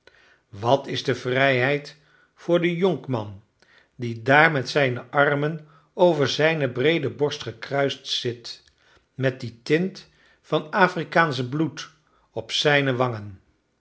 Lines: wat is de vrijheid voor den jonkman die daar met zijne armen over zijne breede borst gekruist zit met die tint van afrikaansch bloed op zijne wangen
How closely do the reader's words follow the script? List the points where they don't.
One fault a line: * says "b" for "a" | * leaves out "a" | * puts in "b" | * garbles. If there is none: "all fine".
all fine